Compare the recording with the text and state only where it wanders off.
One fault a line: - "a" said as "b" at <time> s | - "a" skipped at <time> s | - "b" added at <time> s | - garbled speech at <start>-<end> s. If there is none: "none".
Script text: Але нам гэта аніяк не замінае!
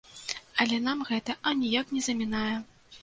none